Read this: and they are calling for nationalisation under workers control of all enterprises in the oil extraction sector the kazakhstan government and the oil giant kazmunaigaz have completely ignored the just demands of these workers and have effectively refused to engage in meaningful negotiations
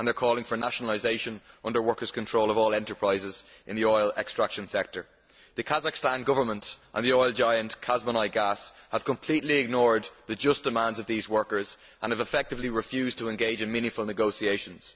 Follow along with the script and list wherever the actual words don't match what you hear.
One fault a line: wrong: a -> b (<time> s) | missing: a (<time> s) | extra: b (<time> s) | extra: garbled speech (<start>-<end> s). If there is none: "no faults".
no faults